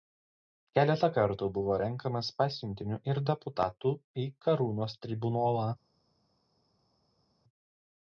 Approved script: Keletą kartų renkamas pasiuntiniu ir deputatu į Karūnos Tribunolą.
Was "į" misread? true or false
false